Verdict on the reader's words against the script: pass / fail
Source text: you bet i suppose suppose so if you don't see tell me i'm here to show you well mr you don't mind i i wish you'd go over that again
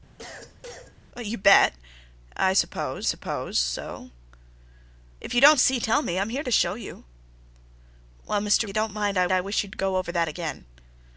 pass